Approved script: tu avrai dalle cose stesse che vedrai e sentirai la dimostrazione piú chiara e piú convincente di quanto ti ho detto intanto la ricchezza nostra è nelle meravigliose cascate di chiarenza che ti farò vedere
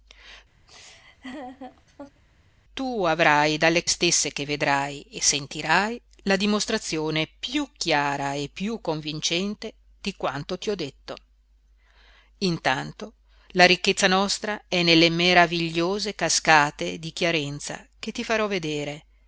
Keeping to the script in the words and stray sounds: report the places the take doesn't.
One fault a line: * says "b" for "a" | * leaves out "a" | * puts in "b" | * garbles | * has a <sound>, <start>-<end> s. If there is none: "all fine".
* has a laugh, 0.7-2.2 s
* leaves out "cose"